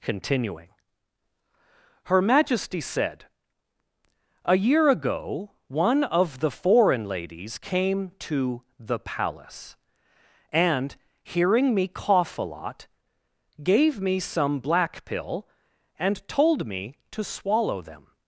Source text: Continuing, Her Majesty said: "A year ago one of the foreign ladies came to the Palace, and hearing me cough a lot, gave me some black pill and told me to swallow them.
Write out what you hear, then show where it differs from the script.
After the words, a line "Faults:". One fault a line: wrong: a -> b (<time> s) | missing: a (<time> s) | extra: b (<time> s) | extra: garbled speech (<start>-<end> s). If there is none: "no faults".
Continuing, Her Majesty said: "A year ago one of the foreign ladies came to the Palace, and hearing me cough a lot, gave me some black pill and told me to swallow them.
Faults:
no faults